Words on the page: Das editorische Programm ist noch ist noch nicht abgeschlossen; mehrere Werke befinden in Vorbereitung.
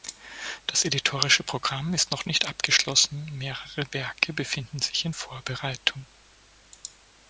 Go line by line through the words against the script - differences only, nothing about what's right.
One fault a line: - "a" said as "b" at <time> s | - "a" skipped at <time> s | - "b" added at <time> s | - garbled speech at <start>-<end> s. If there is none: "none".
- "ist noch" skipped at 2.2 s
- "sich" added at 4.8 s